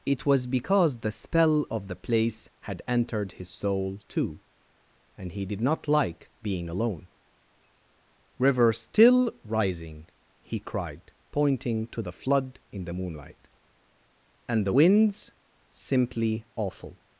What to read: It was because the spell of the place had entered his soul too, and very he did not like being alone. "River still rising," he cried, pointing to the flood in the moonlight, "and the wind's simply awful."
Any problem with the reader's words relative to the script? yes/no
yes